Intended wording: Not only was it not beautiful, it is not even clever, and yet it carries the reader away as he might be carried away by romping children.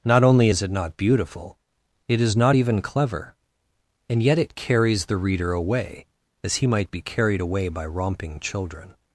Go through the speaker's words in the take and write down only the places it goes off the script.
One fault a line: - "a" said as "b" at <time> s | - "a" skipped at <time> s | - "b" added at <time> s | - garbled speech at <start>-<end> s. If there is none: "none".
- "was" said as "is" at 0.5 s